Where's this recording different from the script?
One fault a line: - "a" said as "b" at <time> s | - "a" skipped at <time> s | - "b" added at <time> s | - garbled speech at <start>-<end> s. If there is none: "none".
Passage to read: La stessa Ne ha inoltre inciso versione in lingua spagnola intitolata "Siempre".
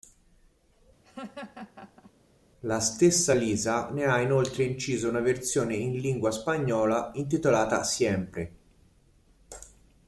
- "Lisa" added at 3.3 s
- "una" added at 5.1 s